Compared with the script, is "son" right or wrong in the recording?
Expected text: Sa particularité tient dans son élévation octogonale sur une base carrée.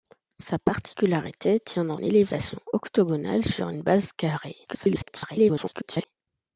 wrong